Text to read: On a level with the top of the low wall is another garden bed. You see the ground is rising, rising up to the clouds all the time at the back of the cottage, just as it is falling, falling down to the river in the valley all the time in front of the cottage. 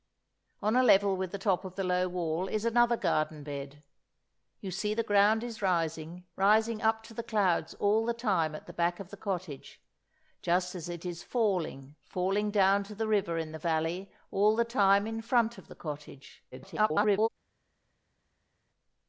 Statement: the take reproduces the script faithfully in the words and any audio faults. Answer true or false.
false